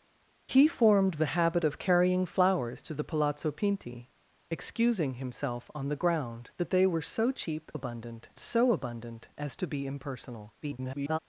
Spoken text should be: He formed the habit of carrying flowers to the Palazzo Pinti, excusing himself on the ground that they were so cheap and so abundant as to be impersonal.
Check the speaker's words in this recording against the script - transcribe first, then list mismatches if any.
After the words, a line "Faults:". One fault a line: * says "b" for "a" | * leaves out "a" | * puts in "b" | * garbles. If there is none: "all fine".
He formed the habit of carrying flowers to the Palazzo Pinti, excusing himself on the ground that they were so cheap abundant so abundant as to be impersonal. [garbled]
Faults:
* says "abundant" for "and"
* garbles